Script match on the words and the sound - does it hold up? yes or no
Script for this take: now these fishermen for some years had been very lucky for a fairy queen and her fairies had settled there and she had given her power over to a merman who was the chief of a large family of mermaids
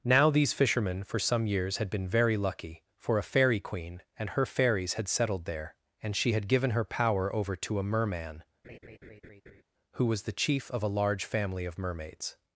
no